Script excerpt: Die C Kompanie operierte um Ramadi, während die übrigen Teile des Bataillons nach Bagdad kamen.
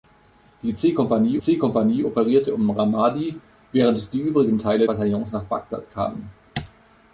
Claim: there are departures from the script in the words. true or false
true